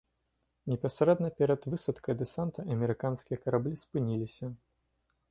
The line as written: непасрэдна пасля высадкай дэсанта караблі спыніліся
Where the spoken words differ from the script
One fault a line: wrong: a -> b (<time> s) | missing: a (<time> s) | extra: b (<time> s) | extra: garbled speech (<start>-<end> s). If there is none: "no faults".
wrong: пасля -> перад (1.4 s)
extra: амерыканскія (2.8 s)